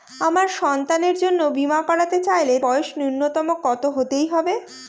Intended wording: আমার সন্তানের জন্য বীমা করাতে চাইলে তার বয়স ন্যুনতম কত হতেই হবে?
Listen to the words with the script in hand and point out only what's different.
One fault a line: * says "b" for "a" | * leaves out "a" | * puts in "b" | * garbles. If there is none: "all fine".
* leaves out "তার"